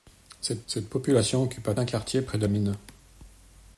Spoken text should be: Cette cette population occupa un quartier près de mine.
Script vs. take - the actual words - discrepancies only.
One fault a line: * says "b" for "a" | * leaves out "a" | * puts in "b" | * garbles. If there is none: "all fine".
all fine